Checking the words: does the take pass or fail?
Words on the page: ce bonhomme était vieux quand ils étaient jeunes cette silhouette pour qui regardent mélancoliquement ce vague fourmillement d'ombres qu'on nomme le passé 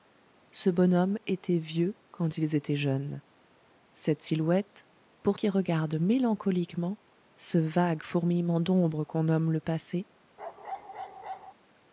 pass